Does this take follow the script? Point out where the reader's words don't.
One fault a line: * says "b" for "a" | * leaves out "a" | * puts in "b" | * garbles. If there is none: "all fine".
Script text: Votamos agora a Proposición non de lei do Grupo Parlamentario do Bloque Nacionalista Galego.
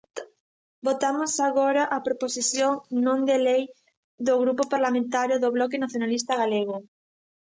all fine